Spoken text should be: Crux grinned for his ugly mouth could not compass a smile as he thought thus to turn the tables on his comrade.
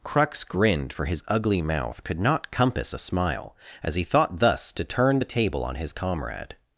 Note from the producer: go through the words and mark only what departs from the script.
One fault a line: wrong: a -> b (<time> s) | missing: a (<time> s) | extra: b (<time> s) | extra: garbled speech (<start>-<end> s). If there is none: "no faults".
wrong: tables -> table (5.2 s)